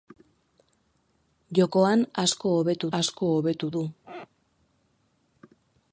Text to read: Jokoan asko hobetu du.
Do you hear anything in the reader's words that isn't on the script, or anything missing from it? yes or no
yes